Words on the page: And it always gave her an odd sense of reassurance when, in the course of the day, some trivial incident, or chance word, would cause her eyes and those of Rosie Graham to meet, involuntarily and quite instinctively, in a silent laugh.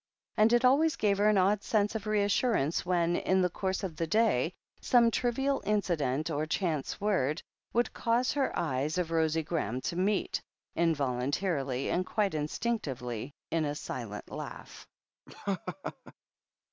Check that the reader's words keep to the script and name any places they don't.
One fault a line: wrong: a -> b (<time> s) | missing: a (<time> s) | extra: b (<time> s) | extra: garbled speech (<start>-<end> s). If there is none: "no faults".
missing: and those (9.0 s)